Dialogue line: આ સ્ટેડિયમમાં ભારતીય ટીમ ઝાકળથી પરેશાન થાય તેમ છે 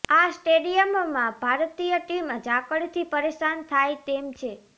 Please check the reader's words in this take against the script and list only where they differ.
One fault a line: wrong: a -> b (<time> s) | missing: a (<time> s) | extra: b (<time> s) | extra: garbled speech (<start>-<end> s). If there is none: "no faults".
no faults